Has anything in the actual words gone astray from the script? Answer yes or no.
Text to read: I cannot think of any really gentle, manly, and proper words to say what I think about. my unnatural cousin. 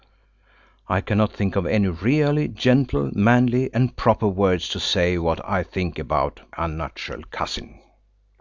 yes